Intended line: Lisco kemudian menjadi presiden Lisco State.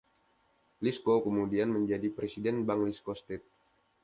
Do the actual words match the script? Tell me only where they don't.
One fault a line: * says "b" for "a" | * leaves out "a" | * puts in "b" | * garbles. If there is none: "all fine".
* puts in "bank"